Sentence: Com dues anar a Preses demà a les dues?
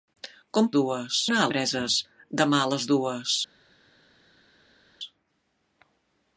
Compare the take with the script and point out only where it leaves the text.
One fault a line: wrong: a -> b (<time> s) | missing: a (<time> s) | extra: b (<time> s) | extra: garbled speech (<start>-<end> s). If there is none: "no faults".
no faults